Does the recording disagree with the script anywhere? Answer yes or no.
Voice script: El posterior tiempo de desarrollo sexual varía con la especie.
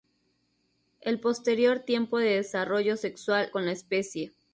yes